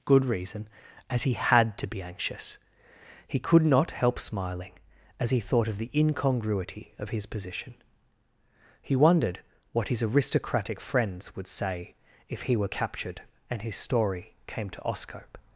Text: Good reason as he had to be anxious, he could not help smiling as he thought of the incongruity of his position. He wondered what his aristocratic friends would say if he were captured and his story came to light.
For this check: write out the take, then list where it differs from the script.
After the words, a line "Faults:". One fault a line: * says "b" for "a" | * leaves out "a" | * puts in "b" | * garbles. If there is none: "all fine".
Good reason as he had to be anxious, he could not help smiling as he thought of the incongruity of his position. He wondered what his aristocratic friends would say if he were captured and his story came to oscope.
Faults:
* says "oscope" for "light"